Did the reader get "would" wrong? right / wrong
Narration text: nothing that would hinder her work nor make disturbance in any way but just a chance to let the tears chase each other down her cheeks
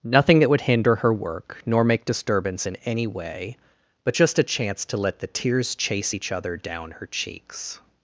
right